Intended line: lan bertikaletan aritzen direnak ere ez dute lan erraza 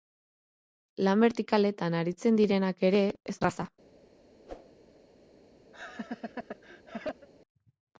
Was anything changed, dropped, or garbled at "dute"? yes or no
yes